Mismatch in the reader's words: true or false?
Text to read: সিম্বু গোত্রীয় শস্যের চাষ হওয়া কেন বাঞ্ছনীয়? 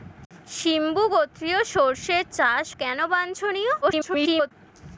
true